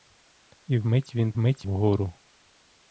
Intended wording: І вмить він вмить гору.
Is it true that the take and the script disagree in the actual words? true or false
false